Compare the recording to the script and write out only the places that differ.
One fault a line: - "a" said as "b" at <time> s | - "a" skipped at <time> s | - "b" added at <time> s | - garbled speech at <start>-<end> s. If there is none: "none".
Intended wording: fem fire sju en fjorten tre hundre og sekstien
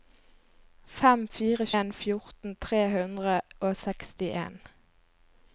- "sju" skipped at 1.7 s